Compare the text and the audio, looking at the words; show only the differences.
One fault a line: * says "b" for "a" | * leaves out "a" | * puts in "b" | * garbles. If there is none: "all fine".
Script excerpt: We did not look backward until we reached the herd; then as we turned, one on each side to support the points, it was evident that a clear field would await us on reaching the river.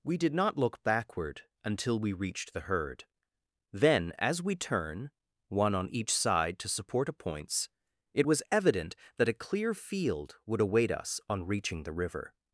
* says "turn" for "turned"
* says "a" for "the"